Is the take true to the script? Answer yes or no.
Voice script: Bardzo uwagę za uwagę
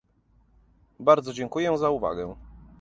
no